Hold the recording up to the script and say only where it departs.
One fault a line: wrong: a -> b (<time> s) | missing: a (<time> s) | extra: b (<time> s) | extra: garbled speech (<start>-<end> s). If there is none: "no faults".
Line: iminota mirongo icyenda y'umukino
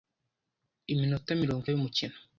missing: icyenda (1.6 s)